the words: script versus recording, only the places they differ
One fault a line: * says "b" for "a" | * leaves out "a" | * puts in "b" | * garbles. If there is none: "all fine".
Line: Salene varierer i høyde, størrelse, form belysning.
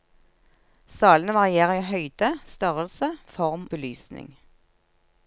all fine